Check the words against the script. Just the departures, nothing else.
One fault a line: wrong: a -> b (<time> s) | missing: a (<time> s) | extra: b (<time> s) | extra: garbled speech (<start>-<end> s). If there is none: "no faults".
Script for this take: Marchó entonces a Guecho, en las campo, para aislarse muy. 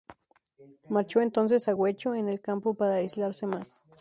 wrong: las -> el (2.3 s)
wrong: muy -> más (3.5 s)